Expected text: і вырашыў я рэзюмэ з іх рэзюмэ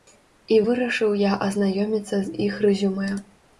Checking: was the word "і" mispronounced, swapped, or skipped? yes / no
no